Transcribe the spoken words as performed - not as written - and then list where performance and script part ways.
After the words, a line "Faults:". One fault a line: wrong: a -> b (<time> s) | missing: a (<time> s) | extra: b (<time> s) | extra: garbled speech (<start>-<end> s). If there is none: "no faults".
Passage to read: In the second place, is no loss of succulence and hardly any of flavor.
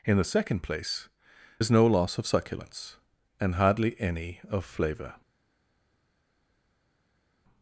In the second place, is no loss of succulence and hardly any of flavor.
Faults:
no faults